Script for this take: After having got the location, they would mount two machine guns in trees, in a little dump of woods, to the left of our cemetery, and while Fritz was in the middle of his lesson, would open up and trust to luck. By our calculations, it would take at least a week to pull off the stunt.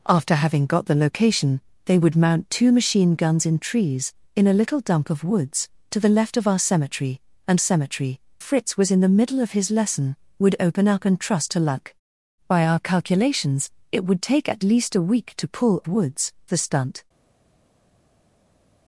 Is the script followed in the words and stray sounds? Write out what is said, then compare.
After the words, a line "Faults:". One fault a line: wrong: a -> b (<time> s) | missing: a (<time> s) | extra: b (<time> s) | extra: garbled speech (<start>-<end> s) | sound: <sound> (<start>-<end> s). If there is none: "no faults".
After having got the location, they would mount two machine guns in trees, in a little dump of woods, to the left of our cemetery, and cemetery Fritz was in the middle of his lesson, would open up and trust to luck. By our calculations, it would take at least a week to pull woods the stunt.
Faults:
wrong: while -> cemetery (7.6 s)
wrong: off -> woods (15.9 s)